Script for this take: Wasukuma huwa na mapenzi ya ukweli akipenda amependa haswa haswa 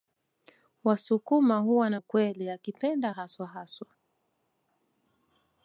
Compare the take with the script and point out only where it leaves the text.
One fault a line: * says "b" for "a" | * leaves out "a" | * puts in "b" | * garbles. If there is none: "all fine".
* leaves out "mapenzi ya"
* leaves out "amependa"